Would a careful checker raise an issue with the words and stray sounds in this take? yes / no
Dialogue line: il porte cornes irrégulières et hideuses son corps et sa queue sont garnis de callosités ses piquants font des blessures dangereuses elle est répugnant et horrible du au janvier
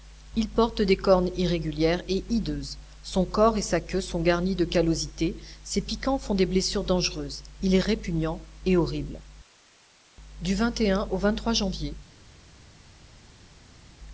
yes